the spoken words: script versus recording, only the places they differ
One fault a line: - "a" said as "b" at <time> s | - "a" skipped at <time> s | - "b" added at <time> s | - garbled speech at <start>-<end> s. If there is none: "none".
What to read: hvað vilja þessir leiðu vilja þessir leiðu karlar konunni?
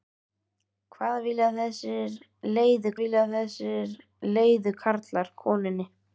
none